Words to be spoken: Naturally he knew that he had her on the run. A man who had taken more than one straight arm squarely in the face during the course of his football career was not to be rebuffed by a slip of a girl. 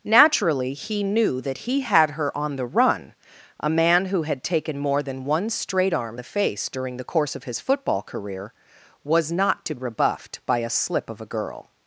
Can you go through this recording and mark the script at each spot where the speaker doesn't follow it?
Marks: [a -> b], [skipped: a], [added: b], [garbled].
Naturally he knew that he had her on the run. A man who had taken more than one straight arm [skipped: squarely in] the face during the course of his football career was not to [skipped: be] rebuffed by a slip of a girl.